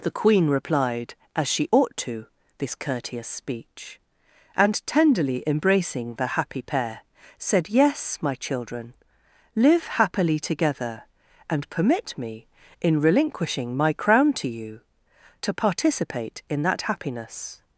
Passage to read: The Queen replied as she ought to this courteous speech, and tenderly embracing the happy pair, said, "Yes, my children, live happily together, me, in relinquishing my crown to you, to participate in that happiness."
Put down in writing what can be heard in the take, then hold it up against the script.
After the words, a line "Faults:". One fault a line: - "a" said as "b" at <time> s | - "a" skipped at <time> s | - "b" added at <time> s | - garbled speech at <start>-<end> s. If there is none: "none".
The Queen replied as she ought to this courteous speech, and tenderly embracing the happy pair, said, "Yes, my children, live happily together, and permit me, in relinquishing my crown to you, to participate in that happiness."
Faults:
- "and permit" added at 11.5 s